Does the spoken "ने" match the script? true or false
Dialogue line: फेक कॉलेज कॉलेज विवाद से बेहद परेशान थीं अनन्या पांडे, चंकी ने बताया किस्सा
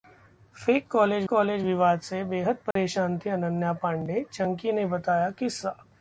true